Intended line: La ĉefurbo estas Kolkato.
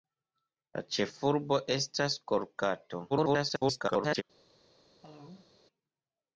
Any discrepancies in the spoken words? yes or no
yes